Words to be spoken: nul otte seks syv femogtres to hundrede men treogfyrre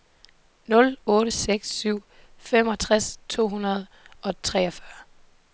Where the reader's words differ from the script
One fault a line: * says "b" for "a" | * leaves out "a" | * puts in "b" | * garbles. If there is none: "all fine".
* says "og" for "men"